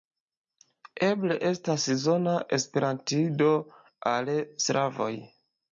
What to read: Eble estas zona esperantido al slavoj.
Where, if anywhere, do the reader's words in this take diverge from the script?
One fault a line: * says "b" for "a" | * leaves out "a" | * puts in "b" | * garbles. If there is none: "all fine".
all fine